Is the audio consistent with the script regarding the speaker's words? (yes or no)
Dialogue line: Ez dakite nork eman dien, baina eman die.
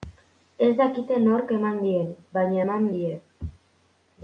yes